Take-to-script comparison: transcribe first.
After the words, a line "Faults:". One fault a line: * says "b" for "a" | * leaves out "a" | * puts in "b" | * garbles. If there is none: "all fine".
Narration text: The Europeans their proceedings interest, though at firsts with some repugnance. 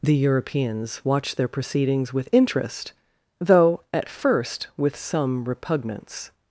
The Europeans watched their proceedings with interest, though at first with some repugnance.
Faults:
* puts in "watched"
* puts in "with"
* says "first" for "firsts"